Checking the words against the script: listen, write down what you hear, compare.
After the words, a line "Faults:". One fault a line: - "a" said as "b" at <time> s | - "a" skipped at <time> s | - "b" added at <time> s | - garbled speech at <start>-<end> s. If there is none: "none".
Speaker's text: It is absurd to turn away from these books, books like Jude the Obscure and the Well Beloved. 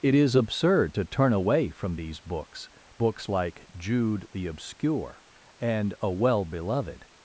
It is absurd to turn away from these books, books like Jude the Obscure and a Well Beloved.
Faults:
- "the" said as "a" at 6.0 s